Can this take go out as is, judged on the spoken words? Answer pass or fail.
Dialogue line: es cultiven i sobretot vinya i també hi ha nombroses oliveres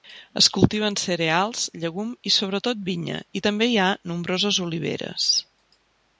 fail